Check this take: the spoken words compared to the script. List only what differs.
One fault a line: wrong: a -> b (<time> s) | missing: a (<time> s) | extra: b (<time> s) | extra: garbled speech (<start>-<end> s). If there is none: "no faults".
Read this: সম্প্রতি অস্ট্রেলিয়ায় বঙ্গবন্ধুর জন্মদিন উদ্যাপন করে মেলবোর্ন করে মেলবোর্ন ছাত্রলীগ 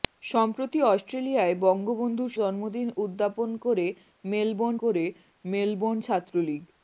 no faults